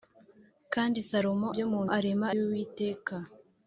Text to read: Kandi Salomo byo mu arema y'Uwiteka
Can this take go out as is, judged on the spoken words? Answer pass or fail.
pass